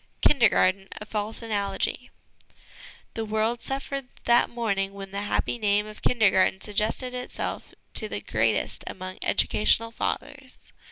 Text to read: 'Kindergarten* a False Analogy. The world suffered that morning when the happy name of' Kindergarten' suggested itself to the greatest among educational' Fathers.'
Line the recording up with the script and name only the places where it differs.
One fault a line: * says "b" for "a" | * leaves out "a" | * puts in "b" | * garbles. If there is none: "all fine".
all fine